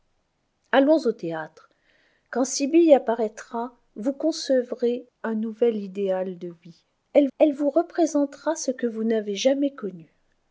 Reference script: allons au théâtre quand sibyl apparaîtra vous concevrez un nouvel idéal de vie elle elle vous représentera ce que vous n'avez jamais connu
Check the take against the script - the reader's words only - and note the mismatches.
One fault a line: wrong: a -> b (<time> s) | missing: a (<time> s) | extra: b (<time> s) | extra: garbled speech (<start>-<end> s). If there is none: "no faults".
no faults